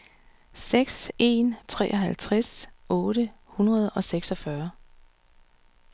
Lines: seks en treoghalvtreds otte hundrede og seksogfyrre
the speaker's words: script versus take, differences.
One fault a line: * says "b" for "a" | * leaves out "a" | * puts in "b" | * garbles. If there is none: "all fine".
all fine